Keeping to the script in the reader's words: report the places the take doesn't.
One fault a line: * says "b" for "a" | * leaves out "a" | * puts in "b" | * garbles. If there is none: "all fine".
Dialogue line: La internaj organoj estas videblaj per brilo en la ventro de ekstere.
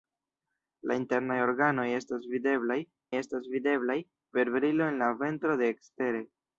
* puts in "estas videblaj"